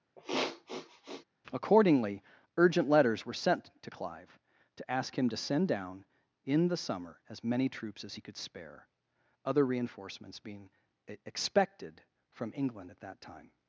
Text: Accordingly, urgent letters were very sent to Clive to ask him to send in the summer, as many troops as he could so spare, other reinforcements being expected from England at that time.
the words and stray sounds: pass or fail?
fail